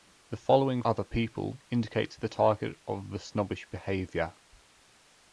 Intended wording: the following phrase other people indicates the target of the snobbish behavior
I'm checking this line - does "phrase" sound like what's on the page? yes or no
no